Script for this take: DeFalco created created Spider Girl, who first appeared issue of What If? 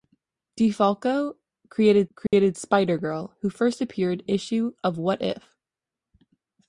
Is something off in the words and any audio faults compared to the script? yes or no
yes